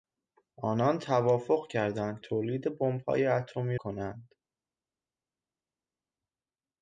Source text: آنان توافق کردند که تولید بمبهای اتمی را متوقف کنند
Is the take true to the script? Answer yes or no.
no